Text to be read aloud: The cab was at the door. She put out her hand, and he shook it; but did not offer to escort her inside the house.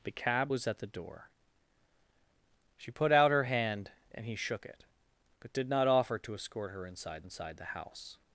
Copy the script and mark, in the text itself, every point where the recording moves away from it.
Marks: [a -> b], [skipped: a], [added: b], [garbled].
The cab was at the door. She put out her hand, and he shook it; but did not offer to escort her inside [added: inside] the house.